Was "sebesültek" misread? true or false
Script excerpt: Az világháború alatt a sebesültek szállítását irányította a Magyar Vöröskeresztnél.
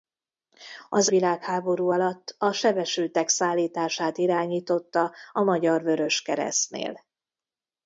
false